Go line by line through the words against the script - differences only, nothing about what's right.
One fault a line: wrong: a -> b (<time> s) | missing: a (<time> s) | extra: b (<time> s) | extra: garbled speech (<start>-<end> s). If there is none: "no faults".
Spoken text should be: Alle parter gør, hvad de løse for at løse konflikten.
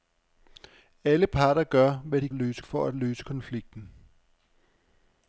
no faults